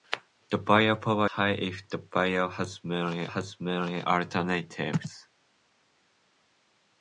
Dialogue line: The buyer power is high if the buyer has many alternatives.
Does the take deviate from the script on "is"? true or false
true